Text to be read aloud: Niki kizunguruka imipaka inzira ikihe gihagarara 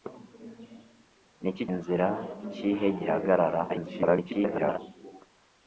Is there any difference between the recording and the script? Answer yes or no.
yes